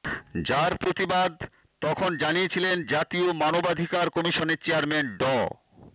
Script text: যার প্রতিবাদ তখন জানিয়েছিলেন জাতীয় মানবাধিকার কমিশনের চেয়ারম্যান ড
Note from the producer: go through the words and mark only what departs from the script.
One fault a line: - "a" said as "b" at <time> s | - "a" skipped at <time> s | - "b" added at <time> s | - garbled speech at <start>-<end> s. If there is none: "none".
none